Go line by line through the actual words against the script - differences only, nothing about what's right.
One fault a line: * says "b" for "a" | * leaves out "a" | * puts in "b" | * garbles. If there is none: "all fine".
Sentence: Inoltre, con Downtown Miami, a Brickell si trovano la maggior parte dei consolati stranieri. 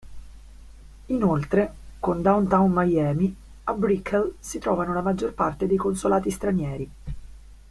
all fine